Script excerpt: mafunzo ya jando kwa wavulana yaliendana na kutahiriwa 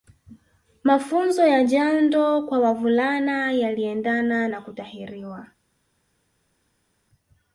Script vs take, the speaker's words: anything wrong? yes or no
no